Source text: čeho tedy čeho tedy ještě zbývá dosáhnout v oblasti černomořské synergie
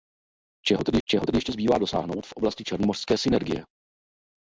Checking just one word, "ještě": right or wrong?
right